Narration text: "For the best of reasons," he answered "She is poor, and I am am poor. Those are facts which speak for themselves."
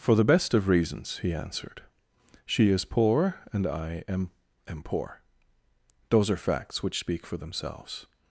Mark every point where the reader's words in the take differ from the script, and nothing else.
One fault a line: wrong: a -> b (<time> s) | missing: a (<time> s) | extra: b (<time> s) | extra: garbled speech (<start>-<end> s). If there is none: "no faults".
no faults